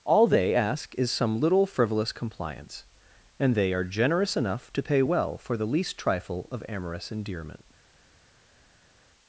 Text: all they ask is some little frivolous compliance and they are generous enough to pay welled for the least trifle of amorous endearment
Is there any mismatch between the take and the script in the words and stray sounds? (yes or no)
yes